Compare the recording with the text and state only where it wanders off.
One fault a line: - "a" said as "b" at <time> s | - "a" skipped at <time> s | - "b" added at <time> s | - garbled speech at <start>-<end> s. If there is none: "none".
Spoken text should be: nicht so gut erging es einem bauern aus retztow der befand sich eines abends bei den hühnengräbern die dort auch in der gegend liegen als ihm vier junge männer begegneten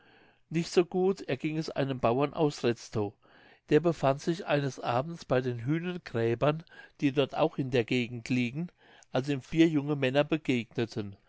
none